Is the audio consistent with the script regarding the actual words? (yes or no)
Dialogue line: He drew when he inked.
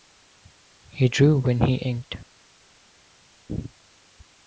yes